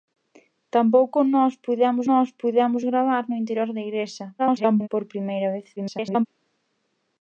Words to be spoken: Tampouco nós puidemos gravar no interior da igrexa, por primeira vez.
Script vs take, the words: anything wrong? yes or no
yes